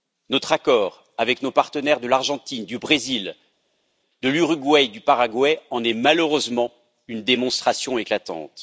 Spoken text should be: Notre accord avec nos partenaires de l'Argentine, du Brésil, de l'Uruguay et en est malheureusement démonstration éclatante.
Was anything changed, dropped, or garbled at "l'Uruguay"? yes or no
no